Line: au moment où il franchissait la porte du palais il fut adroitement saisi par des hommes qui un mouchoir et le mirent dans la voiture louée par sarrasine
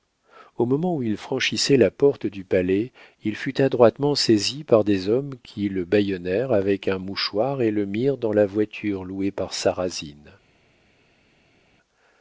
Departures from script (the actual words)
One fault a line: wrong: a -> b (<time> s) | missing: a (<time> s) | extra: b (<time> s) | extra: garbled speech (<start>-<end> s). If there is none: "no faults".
extra: le bâillonnèrent avec (5.7 s)